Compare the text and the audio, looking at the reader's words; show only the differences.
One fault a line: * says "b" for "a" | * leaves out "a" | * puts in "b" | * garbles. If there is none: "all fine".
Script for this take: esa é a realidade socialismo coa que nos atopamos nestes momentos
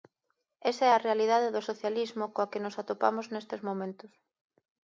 * puts in "do"